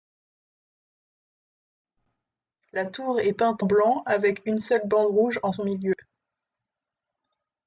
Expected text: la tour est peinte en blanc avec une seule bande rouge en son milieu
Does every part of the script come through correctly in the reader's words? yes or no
no